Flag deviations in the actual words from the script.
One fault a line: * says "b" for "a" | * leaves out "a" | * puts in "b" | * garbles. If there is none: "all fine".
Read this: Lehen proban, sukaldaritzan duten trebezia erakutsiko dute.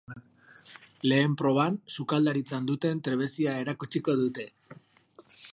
all fine